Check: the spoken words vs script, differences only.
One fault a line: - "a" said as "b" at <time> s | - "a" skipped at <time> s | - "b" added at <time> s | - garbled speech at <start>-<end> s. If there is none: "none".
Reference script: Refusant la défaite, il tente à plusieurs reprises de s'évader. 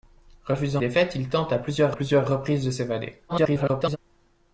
- "la" skipped at 0.8 s
- "plusieurs" added at 1.9 s
- garbled speech at 3.3-4.0 s